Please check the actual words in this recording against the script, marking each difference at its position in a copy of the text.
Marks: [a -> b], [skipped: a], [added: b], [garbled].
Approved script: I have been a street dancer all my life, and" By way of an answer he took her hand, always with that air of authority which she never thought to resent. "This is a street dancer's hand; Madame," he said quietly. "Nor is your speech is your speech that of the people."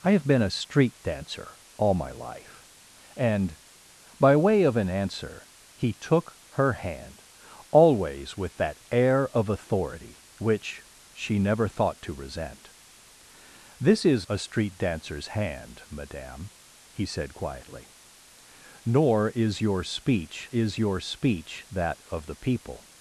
I have been a street dancer all my life, and" By way of an answer he took her hand, always with that air of authority which she never thought to resent. "This is a street dancer's hand; Madame," he said quietly. "Nor is your speech is your speech that of the people."